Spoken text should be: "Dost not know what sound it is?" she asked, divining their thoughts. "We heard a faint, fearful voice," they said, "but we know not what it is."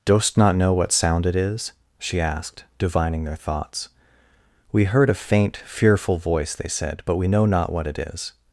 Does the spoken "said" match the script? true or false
true